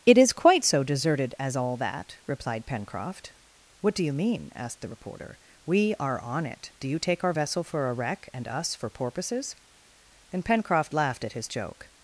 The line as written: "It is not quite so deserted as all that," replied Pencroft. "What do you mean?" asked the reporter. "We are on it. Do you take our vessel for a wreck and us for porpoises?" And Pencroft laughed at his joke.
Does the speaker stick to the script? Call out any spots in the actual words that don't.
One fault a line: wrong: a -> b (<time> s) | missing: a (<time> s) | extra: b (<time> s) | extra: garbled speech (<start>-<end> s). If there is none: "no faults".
missing: not (0.3 s)